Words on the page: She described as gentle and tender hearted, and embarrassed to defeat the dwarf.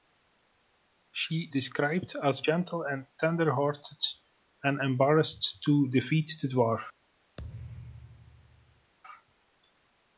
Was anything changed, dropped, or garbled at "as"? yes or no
no